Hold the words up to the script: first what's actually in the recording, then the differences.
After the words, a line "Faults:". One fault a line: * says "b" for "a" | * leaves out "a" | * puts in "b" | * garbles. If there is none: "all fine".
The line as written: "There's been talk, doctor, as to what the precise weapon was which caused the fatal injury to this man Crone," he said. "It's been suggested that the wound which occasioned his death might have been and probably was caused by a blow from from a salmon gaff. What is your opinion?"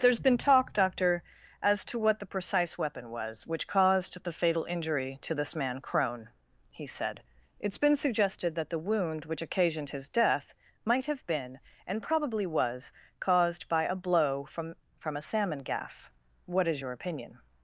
"There's been talk, doctor, as to what the precise weapon was which caused the fatal injury to this man Crone," he said. "It's been suggested that the wound which occasioned his death might have been and probably was caused by a blow from from a salmon gaff. What is your opinion?"
Faults:
all fine